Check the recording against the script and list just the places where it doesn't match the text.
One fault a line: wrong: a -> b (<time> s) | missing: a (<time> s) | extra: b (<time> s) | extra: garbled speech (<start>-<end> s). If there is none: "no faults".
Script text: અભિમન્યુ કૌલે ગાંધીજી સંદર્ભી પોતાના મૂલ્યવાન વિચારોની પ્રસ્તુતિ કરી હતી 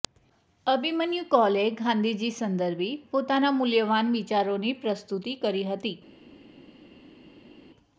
no faults